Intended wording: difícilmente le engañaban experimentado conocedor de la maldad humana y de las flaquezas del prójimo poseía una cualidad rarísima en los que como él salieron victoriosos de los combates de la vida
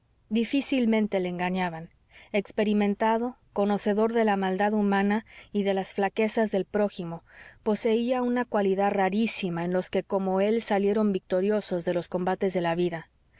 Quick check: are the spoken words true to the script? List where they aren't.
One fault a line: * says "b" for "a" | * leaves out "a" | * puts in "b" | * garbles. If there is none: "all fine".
all fine